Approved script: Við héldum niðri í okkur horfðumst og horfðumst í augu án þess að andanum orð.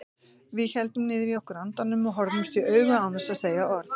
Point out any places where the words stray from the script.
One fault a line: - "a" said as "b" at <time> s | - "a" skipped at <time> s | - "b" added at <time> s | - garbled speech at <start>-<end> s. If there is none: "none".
- "horfðumst" said as "andanum" at 1.6 s
- "andanum" said as "segja" at 3.4 s